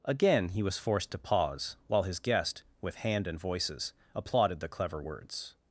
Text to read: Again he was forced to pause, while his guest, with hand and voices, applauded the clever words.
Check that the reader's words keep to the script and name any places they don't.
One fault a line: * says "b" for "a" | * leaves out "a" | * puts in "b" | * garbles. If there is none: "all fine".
all fine